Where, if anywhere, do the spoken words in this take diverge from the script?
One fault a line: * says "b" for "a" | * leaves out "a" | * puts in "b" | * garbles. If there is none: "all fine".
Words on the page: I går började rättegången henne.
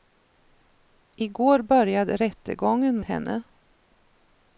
all fine